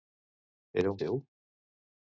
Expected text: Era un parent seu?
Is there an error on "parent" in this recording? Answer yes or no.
yes